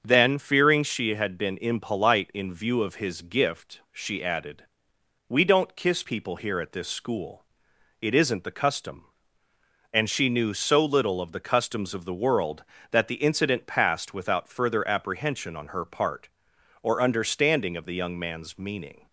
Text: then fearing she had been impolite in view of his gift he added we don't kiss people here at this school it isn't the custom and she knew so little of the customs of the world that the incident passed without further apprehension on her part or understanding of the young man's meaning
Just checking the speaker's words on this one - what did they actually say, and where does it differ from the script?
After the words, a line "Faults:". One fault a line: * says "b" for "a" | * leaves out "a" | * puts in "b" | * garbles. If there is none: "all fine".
then fearing she had been impolite in view of his gift she added we don't kiss people here at this school it isn't the custom and she knew so little of the customs of the world that the incident passed without further apprehension on her part or understanding of the young man's meaning
Faults:
* says "she" for "he"